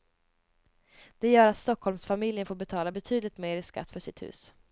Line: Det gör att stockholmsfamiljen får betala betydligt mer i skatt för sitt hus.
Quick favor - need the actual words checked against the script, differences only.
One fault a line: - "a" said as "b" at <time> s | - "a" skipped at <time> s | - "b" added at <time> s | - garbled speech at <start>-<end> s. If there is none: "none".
none